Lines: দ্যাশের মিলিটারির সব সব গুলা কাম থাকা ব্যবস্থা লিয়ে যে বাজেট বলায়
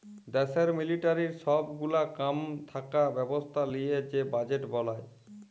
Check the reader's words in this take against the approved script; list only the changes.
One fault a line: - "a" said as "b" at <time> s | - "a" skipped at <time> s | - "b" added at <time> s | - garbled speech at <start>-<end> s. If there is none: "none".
- "সব" skipped at 1.6 s